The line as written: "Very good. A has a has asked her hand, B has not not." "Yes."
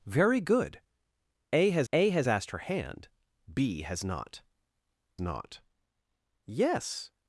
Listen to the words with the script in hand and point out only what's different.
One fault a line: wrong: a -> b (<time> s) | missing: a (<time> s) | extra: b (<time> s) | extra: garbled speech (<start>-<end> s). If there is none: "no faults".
no faults